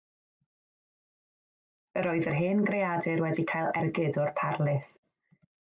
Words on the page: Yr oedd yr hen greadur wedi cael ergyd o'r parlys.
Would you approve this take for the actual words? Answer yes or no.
yes